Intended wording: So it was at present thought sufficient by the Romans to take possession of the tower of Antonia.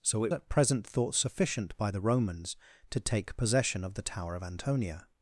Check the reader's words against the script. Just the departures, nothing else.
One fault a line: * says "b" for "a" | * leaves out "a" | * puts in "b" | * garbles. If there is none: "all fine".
* leaves out "was"